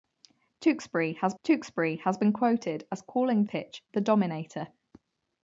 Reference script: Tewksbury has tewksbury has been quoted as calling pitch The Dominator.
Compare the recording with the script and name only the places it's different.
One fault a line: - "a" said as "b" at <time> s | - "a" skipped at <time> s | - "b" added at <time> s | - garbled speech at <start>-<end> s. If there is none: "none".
none